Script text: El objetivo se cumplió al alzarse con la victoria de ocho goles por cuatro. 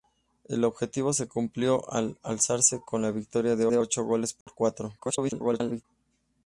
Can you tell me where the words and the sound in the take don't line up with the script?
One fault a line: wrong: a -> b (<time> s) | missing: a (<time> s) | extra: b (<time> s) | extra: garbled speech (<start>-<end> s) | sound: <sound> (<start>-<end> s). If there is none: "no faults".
extra: de (3.7 s)
sound: dropout (4.4-4.5 s)
extra: garbled speech (5.0-5.8 s)